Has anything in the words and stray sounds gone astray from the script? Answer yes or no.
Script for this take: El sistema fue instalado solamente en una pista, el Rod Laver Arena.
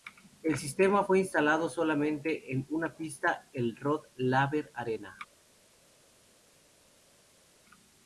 no